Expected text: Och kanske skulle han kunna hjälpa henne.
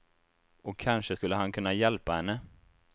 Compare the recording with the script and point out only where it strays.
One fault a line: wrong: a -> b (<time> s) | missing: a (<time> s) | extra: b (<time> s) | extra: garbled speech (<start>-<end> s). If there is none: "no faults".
no faults